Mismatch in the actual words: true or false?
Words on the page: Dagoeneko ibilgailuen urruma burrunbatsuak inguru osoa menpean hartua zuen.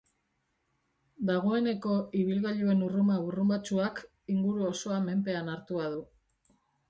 true